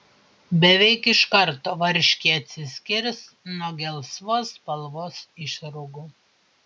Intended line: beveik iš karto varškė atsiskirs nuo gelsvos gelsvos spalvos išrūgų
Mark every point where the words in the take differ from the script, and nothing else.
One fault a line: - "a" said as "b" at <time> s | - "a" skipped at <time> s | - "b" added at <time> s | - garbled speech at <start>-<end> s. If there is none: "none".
- "gelsvos" skipped at 4.5 s